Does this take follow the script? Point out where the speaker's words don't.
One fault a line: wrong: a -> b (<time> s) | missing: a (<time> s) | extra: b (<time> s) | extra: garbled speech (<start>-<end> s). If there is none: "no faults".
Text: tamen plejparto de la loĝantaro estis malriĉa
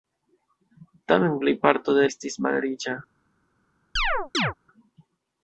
missing: la loĝantaro (2.1 s)